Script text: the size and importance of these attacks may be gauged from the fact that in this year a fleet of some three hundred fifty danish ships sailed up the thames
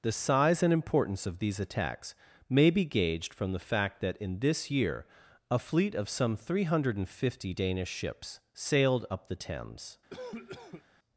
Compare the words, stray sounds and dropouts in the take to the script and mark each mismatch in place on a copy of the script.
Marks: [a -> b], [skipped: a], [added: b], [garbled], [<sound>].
the size and importance of these attacks may be gauged from the fact that in this year a fleet of some three hundred fifty danish ships sailed up the thames [cough]